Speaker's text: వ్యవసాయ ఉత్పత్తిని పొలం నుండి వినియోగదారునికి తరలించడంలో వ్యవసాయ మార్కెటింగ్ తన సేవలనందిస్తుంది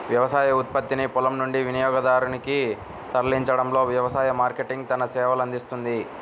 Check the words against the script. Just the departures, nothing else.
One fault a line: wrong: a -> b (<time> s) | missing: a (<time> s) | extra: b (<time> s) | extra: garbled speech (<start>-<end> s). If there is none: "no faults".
no faults